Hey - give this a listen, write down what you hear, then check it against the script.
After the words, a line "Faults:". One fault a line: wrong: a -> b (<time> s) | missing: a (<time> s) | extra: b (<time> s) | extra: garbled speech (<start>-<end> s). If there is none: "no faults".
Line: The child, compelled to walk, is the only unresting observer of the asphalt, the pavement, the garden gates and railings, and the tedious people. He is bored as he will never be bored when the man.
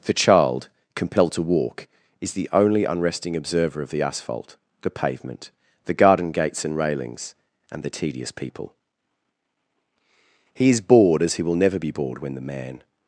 The child, compelled to walk, is the only unresting observer of the asphalt, the pavement, the garden gates and railings, and the tedious people. He is bored as he will never be bored when the man.
Faults:
no faults